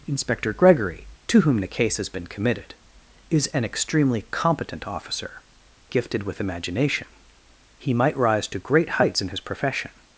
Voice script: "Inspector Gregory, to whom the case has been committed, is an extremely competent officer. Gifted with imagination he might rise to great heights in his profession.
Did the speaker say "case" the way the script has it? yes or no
yes